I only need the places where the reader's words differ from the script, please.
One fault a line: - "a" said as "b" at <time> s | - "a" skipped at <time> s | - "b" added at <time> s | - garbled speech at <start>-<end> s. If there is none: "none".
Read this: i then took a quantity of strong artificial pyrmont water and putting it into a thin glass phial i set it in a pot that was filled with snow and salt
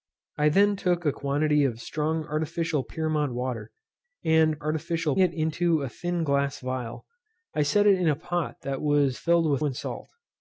- "putting" said as "artificial" at 4.6 s
- "snow" skipped at 9.6 s